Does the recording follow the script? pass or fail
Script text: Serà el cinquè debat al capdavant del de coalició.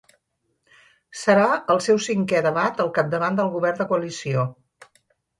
fail